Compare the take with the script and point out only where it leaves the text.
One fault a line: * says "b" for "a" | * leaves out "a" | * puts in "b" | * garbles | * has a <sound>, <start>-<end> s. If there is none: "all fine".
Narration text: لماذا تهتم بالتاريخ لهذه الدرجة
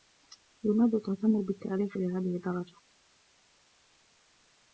all fine